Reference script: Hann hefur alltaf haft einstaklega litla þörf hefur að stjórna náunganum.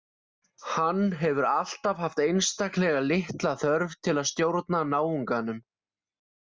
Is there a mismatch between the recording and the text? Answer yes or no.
yes